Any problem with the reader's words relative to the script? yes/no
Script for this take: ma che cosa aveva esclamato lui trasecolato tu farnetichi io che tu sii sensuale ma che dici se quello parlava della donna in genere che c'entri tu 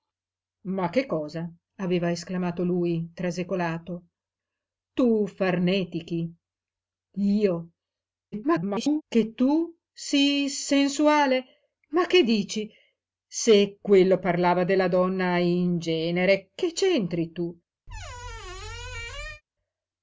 yes